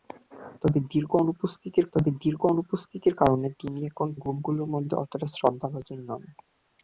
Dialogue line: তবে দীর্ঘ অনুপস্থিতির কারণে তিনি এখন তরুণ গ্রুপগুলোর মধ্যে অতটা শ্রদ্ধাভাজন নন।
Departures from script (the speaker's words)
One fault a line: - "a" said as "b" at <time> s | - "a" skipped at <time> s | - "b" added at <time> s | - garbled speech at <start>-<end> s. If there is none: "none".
- "তবে দীর্ঘ অনুপস্থিতির" added at 1.9 s
- "তরুণ" skipped at 4.1 s